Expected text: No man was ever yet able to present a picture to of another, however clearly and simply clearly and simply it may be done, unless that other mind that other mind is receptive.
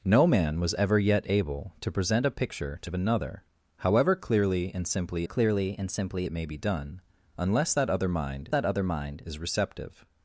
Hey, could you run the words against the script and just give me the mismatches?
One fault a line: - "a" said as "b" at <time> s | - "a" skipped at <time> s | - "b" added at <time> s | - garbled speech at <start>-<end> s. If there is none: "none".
none